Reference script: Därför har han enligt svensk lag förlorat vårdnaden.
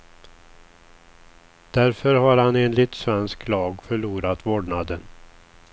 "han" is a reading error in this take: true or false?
false